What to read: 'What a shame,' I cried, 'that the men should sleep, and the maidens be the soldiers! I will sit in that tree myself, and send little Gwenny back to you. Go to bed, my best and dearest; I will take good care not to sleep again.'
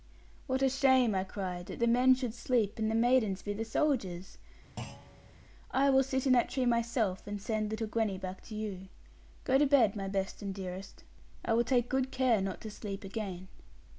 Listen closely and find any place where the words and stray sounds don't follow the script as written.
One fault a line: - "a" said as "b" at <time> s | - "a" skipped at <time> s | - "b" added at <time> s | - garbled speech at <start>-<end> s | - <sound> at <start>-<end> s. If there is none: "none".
- thud at 4.8-5.3 s